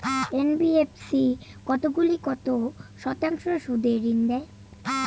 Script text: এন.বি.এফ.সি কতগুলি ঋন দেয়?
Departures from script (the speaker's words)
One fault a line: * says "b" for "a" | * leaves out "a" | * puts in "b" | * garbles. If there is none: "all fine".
* puts in "কত শতাংশ সুদে"